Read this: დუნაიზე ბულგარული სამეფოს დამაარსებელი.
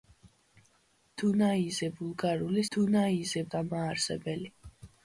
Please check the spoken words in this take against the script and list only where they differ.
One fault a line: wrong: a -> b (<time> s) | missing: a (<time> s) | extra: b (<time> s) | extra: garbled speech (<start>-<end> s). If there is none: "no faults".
wrong: სამეფოს -> დუნაიზე (2.7 s)